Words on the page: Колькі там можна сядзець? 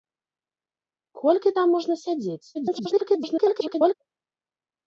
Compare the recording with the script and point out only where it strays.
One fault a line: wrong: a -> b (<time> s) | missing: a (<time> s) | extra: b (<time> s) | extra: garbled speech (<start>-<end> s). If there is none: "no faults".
extra: garbled speech (2.5-3.9 s)